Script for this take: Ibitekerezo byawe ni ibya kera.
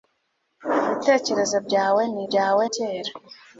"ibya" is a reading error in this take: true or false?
true